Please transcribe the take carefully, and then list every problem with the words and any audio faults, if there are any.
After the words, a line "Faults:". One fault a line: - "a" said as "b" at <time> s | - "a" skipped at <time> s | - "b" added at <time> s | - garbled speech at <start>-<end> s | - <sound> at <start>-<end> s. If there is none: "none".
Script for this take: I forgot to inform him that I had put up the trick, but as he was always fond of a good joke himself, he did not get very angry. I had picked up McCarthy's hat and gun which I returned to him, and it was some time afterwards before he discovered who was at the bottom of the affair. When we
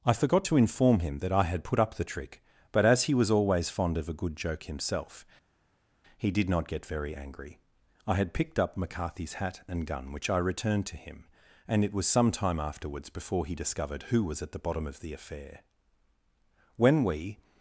I forgot to inform him that I had put up the trick, but as he was always fond of a good joke himself, he did not get very angry. I had picked up McCarthy's hat and gun which I returned to him, and it was some time afterwards before he discovered who was at the bottom of the affair. When we
Faults:
none